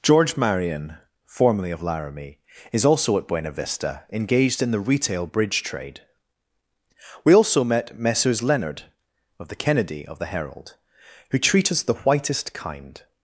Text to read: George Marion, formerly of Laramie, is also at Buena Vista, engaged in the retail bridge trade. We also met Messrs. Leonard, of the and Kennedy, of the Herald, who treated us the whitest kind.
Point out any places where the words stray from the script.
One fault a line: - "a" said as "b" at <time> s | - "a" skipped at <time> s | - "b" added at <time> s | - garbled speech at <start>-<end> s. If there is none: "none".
- "and" skipped at 9.6 s
- "treated" said as "treat" at 11.4 s